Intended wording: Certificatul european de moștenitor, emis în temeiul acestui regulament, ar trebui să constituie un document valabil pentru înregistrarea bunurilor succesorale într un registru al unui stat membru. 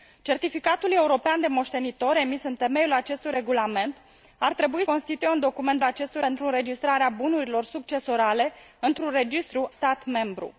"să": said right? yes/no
no